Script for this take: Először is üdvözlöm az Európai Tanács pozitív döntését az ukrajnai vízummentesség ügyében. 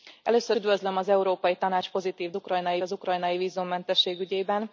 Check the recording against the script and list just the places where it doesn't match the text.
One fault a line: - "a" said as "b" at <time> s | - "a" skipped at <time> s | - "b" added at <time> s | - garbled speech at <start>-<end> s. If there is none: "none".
- "is" skipped at 0.6 s
- "döntését" said as "ukrajnai" at 2.3 s